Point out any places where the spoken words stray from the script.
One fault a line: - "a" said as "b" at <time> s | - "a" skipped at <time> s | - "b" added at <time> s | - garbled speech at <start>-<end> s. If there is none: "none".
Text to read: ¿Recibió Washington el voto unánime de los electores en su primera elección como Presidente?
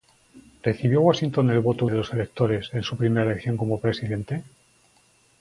- "unánime" skipped at 1.9 s